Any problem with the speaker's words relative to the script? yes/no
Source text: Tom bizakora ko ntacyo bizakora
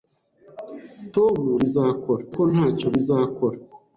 no